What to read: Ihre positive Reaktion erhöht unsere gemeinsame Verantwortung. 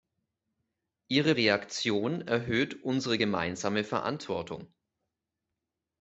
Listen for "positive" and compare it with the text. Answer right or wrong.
wrong